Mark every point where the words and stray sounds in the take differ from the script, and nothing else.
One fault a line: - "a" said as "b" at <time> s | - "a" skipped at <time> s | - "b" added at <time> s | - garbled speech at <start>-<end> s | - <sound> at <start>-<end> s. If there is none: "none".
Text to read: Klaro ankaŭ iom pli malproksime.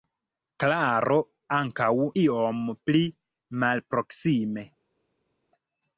none